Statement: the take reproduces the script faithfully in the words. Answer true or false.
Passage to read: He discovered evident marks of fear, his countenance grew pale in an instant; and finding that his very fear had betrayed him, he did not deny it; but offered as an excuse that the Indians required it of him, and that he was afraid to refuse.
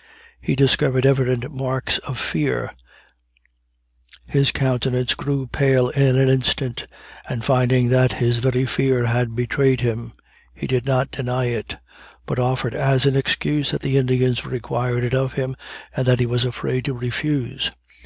true